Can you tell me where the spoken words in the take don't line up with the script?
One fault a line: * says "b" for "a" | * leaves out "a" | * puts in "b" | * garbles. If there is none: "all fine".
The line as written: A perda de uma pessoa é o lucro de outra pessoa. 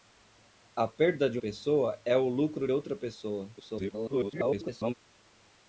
* leaves out "uma"
* leaves out "de"
* garbles